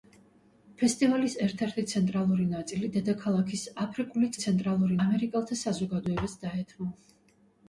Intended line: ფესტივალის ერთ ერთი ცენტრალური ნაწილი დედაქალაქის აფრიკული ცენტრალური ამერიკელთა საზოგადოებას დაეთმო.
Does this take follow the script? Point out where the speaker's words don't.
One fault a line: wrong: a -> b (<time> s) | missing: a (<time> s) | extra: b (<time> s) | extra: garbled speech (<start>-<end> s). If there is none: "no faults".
no faults